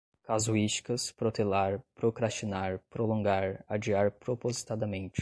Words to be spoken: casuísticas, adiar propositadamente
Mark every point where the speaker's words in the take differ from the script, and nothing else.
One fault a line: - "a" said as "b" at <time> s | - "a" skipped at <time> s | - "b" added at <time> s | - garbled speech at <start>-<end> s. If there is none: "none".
- "protelar procrastinar prolongar" added at 1.1 s